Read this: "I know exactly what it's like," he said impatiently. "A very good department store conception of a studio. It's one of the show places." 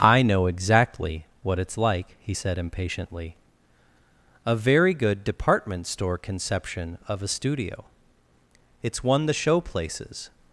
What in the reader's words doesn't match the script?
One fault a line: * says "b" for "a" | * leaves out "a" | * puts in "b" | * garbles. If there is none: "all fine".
* leaves out "of"